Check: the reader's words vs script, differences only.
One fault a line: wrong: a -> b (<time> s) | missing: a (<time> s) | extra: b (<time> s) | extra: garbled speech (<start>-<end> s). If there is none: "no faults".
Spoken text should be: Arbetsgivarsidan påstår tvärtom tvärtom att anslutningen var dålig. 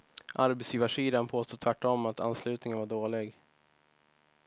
missing: tvärtom (2.1 s)